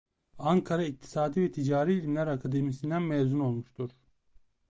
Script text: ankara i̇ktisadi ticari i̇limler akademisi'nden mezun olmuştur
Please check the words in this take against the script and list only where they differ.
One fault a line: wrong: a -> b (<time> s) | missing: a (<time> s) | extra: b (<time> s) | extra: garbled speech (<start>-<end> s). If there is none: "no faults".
extra: ve (1.4 s)